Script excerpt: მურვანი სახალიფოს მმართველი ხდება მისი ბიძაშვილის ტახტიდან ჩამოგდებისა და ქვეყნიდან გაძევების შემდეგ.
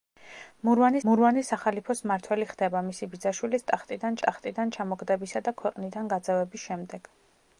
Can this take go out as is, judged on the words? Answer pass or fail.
fail